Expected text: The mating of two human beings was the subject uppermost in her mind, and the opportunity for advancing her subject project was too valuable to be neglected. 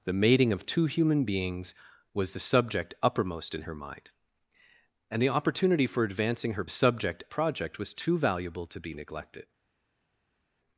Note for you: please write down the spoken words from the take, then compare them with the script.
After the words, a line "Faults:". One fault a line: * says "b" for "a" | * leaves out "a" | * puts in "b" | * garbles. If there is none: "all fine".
The mating of two human beings was the subject uppermost in her mind, and the opportunity for advancing her subject project was too valuable to be neglected.
Faults:
all fine